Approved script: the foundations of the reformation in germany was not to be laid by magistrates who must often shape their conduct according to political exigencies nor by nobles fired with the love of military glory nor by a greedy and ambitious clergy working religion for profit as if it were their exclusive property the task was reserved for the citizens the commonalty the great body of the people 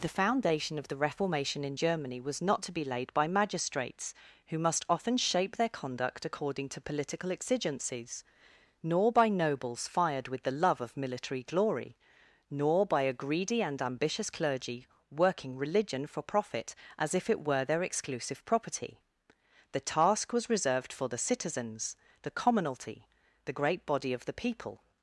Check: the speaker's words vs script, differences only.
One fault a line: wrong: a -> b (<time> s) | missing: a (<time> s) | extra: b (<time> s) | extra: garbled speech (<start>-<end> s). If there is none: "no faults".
wrong: foundations -> foundation (0.2 s)